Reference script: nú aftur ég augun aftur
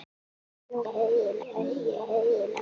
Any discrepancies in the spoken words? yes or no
no